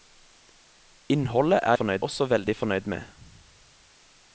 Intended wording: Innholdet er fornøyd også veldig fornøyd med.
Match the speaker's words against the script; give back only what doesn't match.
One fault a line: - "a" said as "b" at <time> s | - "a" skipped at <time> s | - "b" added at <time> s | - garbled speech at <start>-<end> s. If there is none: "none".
none